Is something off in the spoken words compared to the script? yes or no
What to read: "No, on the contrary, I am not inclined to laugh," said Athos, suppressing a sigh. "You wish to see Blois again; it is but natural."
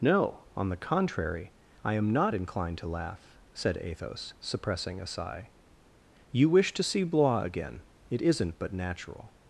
yes